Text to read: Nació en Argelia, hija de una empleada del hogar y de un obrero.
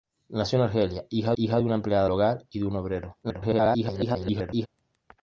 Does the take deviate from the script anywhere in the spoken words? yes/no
yes